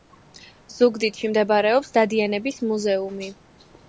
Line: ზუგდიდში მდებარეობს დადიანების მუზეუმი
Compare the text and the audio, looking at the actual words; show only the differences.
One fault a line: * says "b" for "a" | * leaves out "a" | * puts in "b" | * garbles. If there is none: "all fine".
all fine